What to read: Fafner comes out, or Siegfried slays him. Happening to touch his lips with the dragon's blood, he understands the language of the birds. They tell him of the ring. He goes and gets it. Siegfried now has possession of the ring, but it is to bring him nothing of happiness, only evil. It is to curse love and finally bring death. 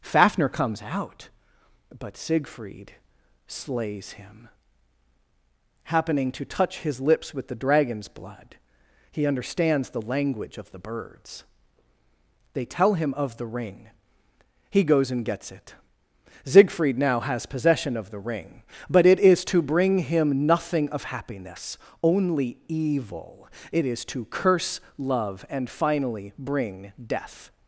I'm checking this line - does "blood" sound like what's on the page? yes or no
yes